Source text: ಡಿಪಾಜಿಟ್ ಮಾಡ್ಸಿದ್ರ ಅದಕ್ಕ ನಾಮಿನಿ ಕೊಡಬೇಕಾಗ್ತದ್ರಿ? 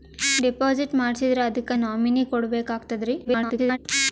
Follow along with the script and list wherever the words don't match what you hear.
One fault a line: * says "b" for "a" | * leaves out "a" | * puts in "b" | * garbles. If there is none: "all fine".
* garbles